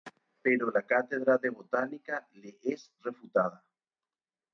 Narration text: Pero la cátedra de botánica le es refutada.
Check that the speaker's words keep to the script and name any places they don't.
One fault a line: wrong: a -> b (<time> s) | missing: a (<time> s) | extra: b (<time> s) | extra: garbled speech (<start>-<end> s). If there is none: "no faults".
no faults